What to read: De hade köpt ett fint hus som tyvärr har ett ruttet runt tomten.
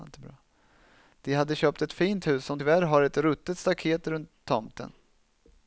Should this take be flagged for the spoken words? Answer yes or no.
yes